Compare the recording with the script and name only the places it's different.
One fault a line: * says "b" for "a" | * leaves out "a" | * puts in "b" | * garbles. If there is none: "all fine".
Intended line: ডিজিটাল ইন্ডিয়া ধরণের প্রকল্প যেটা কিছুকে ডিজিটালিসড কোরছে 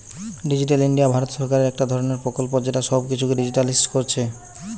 * puts in "ভারত সরকারের একটা"
* puts in "সব"